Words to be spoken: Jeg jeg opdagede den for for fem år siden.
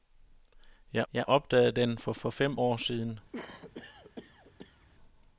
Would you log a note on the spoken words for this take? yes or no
no